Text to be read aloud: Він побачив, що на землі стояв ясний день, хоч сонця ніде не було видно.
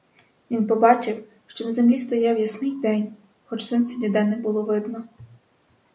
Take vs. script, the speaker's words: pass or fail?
pass